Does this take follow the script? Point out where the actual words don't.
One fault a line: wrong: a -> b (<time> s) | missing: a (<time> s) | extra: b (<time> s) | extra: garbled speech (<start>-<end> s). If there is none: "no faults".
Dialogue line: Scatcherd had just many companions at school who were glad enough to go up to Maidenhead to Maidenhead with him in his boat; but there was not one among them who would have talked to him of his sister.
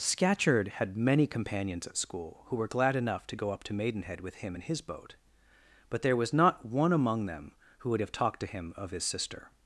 missing: just (1.0 s)
missing: to Maidenhead (4.2 s)